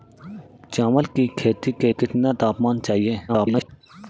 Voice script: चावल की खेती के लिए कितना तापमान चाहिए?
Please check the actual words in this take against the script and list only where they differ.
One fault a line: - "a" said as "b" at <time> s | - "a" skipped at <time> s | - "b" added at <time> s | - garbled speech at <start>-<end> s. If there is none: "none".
- "लिए" skipped at 1.9 s
- garbled speech at 3.3-3.7 s